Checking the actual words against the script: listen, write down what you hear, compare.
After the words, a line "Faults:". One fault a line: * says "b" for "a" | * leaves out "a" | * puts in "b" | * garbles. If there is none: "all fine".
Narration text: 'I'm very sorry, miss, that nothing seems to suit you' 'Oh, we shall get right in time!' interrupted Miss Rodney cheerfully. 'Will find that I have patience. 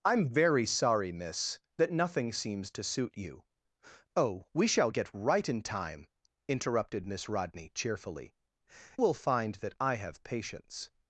'I'm very sorry, miss, that nothing seems to suit you' 'Oh, we shall get right in time!' interrupted Miss Rodney cheerfully. 'Will find that I have patience.
Faults:
all fine